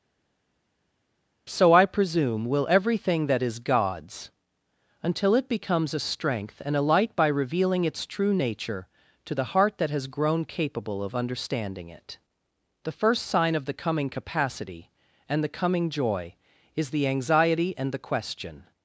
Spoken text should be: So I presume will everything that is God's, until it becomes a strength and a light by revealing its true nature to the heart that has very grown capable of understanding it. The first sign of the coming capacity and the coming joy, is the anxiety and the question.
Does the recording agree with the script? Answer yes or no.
no